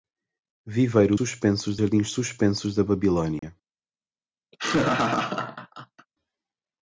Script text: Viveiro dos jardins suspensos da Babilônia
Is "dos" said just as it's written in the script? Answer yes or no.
no